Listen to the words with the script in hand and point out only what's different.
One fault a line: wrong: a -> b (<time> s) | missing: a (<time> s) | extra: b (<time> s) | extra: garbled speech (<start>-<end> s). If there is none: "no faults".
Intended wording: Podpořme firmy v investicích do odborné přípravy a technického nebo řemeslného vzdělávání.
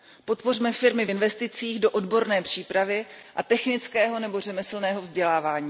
no faults